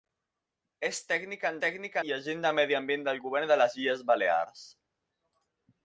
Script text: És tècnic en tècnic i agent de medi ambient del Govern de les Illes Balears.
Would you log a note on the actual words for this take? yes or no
no